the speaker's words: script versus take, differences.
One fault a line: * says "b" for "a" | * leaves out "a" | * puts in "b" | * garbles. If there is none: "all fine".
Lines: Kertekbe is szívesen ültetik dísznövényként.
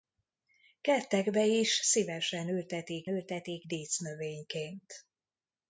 * puts in "ültetik"